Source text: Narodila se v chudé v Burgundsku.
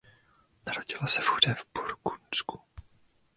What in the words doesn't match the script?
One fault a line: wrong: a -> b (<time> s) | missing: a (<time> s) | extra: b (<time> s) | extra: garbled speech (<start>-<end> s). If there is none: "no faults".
no faults